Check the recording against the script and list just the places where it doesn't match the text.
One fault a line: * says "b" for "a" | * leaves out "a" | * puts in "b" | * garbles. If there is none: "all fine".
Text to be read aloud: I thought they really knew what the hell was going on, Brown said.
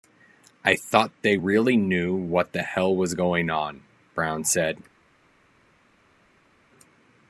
all fine